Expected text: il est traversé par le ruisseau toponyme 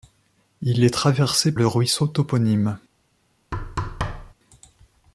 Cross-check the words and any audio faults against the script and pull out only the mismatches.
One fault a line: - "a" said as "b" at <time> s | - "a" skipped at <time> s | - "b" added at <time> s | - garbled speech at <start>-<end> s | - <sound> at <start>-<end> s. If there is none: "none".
- "par" skipped at 1.6 s
- thud at 3.5-4.3 s